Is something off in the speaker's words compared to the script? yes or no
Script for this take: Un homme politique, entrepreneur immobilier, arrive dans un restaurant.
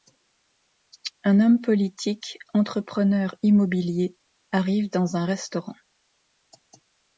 no